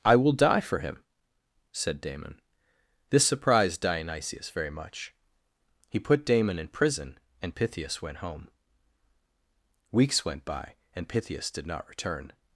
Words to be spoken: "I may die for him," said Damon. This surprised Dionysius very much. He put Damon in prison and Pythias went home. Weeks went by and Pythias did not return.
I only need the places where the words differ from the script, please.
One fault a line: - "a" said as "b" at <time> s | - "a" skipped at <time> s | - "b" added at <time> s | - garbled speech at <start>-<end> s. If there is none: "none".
- "may" said as "will" at 0.1 s